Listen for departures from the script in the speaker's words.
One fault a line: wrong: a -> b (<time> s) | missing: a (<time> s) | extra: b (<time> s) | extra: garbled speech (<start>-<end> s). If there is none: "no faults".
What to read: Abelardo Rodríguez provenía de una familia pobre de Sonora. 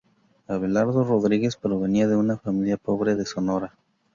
no faults